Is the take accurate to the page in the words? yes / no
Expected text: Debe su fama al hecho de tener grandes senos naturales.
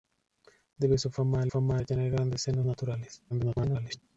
no